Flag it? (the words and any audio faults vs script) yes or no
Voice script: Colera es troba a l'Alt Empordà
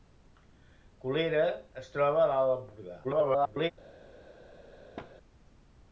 yes